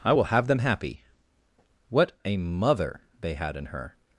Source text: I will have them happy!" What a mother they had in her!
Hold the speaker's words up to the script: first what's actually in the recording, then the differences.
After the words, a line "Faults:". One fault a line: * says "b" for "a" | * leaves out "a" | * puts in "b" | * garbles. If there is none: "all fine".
I will have them happy!" What a mother they had in her!
Faults:
all fine